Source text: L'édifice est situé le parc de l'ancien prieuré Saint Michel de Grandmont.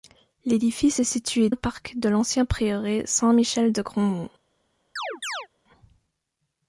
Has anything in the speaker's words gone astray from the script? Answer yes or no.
no